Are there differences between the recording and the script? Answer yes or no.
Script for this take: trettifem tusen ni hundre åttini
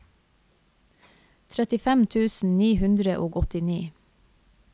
yes